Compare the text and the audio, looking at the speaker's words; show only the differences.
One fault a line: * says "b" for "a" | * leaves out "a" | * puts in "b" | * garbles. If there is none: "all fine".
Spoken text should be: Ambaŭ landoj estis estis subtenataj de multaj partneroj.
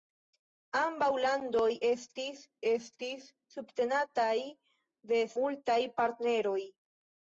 all fine